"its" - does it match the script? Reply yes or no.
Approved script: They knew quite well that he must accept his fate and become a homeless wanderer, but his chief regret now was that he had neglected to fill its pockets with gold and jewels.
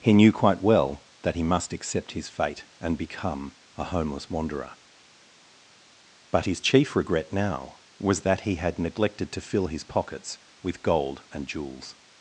no